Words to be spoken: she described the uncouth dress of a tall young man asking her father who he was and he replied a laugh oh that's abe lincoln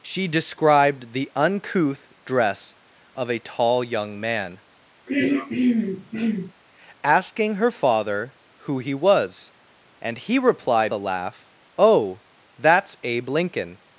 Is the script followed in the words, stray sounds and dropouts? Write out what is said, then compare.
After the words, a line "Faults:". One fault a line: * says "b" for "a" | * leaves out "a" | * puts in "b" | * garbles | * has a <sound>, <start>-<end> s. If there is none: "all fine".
she described the uncouth dress of a tall young man asking her father who he was and he replied a laugh oh that's abe lincoln
Faults:
* has a throat clearing, 5.1-6.5 s